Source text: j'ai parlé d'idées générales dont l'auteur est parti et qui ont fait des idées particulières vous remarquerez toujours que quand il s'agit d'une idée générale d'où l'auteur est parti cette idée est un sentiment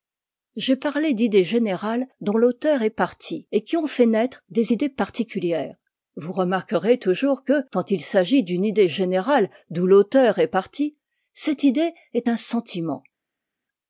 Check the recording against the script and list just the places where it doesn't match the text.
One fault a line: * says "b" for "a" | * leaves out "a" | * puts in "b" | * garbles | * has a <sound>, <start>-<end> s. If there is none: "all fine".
* puts in "naître"